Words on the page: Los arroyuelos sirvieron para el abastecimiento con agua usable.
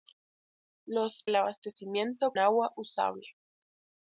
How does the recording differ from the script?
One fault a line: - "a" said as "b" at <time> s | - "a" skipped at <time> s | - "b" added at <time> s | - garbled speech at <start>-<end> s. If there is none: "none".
- "arroyuelos sirvieron para" skipped at 1.3 s
- "con" skipped at 2.3 s